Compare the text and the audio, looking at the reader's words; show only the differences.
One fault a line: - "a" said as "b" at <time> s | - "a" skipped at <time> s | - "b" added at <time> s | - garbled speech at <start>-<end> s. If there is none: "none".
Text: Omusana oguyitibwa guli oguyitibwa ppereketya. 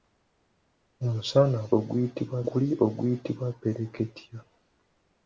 none